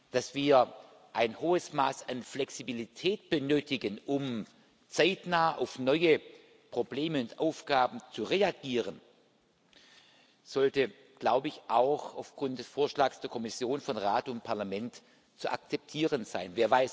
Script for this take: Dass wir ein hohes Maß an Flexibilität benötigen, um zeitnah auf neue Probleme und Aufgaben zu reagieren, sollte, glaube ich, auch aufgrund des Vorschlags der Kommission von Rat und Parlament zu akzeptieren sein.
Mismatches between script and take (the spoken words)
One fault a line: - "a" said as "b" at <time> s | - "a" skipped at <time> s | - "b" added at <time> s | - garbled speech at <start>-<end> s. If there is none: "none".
none